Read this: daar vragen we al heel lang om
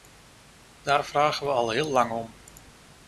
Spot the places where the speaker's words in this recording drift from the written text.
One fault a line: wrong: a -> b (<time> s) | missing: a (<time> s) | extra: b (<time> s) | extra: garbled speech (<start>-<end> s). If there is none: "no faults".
no faults